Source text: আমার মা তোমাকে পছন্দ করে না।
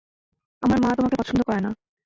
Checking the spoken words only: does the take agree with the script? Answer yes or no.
yes